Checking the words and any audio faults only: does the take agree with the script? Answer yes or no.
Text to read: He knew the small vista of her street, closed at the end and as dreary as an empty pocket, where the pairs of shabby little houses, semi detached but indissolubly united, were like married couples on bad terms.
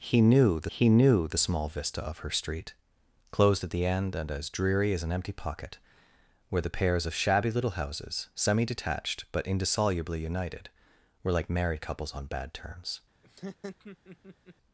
no